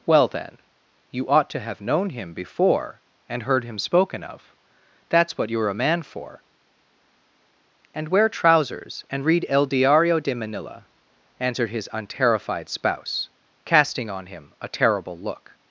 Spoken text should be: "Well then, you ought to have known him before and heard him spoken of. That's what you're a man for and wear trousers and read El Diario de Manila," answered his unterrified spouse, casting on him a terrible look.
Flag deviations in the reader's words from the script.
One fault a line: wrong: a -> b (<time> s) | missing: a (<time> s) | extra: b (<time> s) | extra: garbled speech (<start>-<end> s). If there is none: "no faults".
no faults